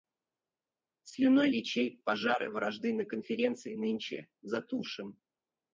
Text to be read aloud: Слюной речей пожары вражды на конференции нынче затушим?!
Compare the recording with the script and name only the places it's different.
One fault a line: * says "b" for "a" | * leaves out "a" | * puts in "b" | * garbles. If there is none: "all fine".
all fine